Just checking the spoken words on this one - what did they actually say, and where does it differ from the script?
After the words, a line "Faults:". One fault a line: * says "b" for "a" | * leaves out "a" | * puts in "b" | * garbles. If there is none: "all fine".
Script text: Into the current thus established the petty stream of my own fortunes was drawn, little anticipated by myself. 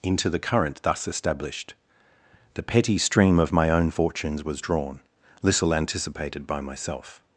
Into the current thus established the petty stream of my own fortunes was drawn, little anticipated by myself.
Faults:
all fine